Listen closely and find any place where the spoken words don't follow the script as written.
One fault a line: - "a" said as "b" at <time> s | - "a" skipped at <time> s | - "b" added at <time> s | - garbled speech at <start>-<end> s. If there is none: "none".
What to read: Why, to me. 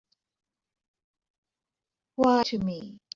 none